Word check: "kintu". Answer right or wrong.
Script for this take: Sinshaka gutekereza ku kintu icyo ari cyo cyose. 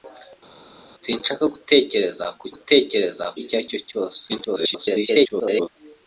wrong